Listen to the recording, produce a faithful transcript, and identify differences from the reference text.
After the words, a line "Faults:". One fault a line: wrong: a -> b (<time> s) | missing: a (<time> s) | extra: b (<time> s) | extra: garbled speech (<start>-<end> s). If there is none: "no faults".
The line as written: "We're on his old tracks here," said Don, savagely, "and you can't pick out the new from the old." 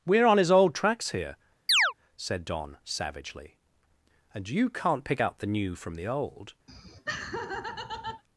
"We're on his old tracks here," said Don, savagely, "and you can't pick out the new from the old."
Faults:
no faults